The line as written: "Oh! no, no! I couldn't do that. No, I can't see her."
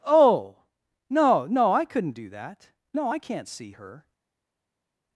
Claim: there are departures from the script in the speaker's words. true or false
false